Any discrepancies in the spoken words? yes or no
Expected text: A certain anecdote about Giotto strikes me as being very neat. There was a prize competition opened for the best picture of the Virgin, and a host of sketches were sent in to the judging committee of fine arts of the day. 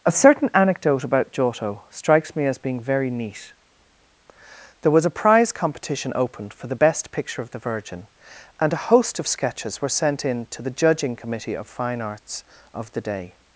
no